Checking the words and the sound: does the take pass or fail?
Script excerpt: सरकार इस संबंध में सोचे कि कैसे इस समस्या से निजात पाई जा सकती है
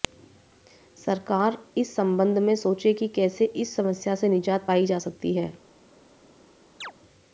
fail